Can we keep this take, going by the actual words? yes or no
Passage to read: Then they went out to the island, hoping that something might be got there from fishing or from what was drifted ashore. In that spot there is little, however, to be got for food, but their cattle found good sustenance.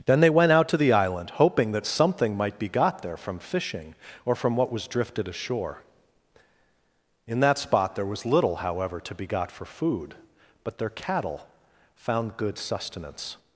no